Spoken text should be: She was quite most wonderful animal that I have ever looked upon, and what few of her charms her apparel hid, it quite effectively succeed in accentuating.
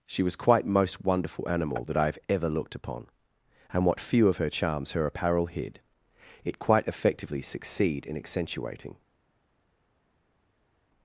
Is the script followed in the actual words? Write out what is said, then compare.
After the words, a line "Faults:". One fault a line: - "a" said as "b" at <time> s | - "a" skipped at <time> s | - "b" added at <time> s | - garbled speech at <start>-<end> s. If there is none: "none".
She was quite most wonderful animal that I have ever looked upon, and what few of her charms her apparel hid, it quite effectively succeed in accentuating.
Faults:
none